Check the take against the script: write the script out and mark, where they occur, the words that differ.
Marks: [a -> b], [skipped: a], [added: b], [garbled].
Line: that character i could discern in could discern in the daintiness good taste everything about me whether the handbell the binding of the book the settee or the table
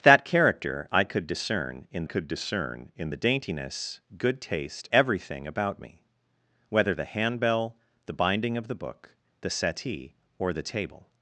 that character i could discern in could discern in the daintiness good taste everything about me whether the handbell the binding of the book the settee or the table